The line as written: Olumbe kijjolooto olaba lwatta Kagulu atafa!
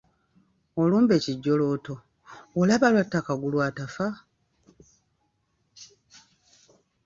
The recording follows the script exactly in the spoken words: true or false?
true